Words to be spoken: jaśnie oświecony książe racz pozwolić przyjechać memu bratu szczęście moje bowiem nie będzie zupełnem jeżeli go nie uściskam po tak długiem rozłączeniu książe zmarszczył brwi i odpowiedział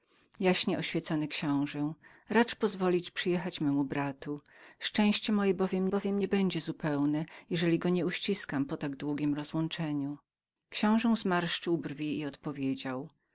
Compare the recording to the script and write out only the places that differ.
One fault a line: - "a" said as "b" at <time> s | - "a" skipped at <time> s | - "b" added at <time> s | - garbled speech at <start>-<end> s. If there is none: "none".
- "bowiem" added at 5.9 s